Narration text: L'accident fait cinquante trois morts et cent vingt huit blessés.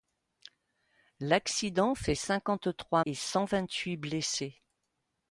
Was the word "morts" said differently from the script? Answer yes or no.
yes